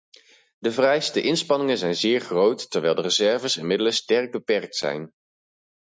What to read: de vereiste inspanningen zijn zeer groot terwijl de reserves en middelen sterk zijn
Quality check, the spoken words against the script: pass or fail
fail